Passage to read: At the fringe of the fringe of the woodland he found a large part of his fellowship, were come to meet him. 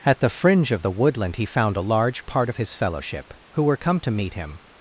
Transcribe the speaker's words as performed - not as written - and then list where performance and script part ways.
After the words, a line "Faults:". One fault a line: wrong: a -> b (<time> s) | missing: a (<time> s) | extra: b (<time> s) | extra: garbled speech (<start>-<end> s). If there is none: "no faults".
At the fringe of the woodland he found a large part of his fellowship, who were come to meet him.
Faults:
missing: fringe of the (0.9 s)
extra: who (3.5 s)